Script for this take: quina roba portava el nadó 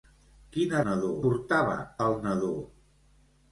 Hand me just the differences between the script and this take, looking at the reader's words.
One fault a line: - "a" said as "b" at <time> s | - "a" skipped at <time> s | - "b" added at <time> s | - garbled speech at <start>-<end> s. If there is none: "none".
- "roba" said as "nadó" at 0.9 s